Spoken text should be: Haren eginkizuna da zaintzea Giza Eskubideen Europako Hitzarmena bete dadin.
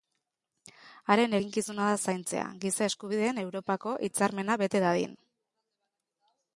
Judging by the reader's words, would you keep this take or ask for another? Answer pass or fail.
pass